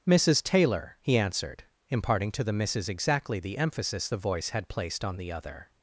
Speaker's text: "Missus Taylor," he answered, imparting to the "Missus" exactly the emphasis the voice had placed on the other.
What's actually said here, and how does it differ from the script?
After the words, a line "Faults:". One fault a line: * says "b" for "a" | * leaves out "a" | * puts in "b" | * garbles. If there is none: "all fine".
"Missus Taylor," he answered, imparting to the "Missus" exactly the emphasis the voice had placed on the other.
Faults:
all fine